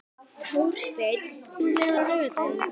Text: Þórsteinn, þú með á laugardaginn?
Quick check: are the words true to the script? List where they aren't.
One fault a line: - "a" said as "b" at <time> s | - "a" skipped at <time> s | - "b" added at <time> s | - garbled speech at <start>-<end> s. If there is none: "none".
none